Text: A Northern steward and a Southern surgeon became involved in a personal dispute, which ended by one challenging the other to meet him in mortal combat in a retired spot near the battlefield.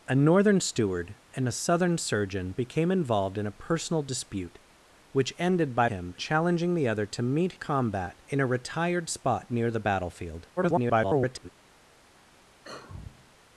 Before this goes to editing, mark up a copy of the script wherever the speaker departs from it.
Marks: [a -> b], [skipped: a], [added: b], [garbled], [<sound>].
A Northern steward and a Southern surgeon became involved in a personal dispute, which ended by [one -> him] challenging the other to meet [skipped: him in mortal] combat in a retired spot near the battlefield. [garbled] [sigh]